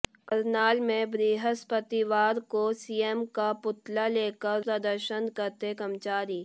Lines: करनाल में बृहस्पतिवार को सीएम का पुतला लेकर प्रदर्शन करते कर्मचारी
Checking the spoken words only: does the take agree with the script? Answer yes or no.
yes